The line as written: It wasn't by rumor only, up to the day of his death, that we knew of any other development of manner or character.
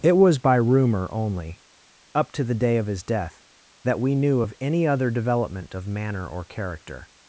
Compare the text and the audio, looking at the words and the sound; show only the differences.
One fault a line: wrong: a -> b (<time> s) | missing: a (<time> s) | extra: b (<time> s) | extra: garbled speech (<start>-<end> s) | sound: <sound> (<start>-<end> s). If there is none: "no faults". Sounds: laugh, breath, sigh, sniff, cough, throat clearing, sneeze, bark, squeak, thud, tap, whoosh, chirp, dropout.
wrong: wasn't -> was (0.2 s)